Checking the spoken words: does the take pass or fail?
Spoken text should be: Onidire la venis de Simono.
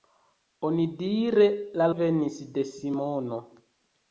pass